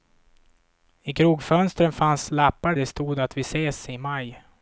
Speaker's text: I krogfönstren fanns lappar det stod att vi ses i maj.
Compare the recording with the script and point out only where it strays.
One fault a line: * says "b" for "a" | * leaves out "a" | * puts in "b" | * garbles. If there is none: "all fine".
all fine